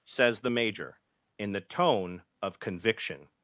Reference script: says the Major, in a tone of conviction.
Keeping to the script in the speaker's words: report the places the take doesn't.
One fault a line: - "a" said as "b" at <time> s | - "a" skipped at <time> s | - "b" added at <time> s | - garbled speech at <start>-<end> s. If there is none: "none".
- "a" said as "the" at 1.5 s